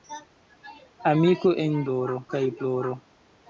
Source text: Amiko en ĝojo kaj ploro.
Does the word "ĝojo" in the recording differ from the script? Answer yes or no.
yes